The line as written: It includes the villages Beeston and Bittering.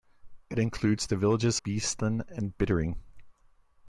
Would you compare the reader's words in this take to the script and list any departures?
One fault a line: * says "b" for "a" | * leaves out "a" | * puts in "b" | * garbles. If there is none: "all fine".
all fine